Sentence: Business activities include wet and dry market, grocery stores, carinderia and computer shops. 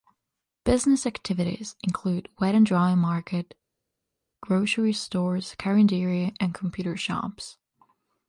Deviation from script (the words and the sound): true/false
false